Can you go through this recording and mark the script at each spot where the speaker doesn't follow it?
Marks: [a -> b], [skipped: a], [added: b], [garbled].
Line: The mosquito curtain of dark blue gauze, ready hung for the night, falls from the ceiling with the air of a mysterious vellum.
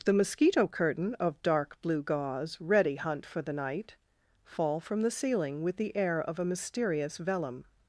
The mosquito curtain of dark blue gauze, ready [hung -> hunt] for the night, [falls -> fall] from the ceiling with the air of a mysterious vellum.